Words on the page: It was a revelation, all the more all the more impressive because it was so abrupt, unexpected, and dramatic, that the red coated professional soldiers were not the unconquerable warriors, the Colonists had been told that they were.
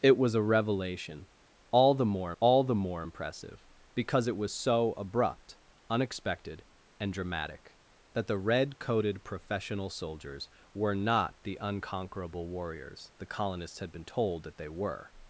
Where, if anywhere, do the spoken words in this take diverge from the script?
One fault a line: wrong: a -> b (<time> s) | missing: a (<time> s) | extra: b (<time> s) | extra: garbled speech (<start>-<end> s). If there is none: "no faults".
no faults